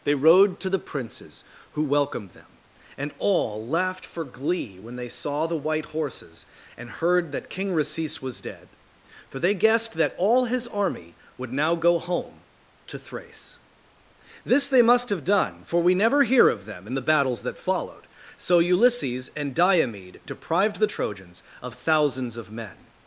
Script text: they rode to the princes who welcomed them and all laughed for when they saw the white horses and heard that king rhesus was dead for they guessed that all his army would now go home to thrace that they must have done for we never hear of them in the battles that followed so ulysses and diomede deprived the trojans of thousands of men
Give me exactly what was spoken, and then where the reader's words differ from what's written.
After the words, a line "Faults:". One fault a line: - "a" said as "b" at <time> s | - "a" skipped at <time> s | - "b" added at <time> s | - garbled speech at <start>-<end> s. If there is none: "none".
they rode to the princes who welcomed them and all laughed for glee when they saw the white horses and heard that king rhesus was dead for they guessed that all his army would now go home to thrace this they must have done for we never hear of them in the battles that followed so ulysses and diomede deprived the trojans of thousands of men
Faults:
- "glee" added at 4.2 s
- "that" said as "this" at 14.4 s